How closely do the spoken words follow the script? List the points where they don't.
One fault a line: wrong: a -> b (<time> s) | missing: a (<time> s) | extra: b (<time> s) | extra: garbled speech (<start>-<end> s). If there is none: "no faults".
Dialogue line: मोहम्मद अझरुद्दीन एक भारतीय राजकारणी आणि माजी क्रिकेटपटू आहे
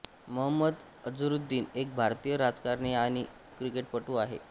missing: माजी (3.2 s)